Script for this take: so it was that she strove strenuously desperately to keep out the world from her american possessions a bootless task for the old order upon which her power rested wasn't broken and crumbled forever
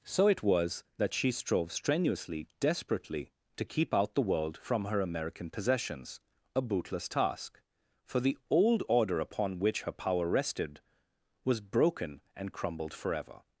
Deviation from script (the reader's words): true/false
true